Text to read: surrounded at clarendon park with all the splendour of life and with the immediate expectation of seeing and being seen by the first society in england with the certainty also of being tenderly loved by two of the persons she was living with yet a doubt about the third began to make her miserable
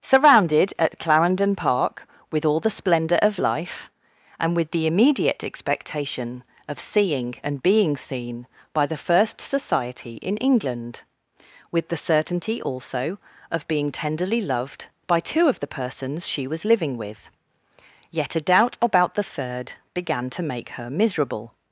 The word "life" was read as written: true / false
true